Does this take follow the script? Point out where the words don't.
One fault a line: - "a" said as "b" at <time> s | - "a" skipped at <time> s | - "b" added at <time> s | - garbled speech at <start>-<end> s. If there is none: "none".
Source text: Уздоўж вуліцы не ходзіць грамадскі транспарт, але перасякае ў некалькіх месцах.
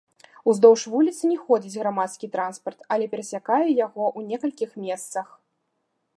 - "яго" added at 3.9 s